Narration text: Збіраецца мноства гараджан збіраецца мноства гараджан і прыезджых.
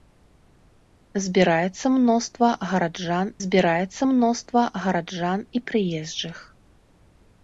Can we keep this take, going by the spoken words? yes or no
yes